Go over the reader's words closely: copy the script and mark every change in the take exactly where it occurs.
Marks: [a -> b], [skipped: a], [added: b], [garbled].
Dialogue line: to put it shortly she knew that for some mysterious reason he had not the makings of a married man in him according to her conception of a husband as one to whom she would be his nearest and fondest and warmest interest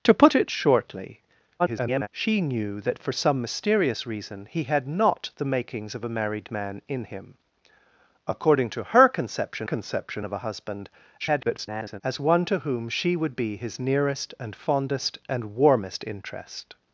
to put it shortly [garbled] she knew that for some mysterious reason he had not the makings of a married man in him according to her conception [added: conception] of a husband [garbled] as one to whom she would be his nearest and fondest and warmest interest